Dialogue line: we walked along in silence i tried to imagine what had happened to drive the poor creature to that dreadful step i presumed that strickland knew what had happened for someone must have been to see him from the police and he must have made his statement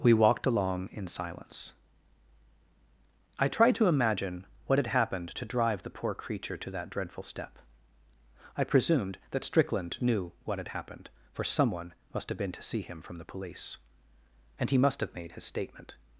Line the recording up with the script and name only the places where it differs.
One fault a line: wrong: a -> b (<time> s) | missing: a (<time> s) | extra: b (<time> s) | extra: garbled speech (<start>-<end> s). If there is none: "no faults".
no faults